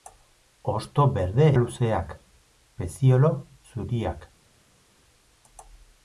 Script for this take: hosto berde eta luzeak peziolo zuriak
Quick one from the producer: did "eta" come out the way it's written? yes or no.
no